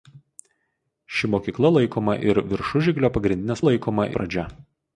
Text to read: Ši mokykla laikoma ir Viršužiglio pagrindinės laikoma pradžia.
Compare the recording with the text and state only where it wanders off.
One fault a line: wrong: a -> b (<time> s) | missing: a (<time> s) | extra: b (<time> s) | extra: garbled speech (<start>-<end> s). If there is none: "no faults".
no faults